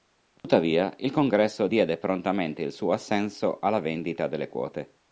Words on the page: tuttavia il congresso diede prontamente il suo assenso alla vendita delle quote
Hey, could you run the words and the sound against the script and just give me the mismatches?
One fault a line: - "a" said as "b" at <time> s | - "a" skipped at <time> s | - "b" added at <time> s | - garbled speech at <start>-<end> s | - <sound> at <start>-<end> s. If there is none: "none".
- dropout at 0.4-0.4 s